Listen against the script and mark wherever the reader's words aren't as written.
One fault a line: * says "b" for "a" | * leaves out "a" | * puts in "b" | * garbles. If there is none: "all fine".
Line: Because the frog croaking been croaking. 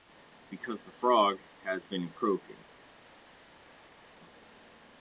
* says "has" for "croaking"